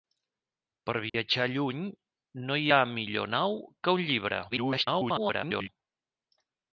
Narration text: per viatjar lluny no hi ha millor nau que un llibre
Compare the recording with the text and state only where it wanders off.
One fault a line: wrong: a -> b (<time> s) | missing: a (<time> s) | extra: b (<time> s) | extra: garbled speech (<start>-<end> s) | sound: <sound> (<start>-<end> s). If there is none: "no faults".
sound: dropout (1.1-1.1 s)
extra: garbled speech (4.5-5.7 s)